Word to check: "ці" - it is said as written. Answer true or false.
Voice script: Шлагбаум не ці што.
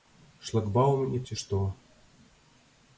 true